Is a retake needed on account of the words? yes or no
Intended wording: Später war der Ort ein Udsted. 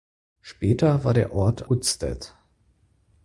yes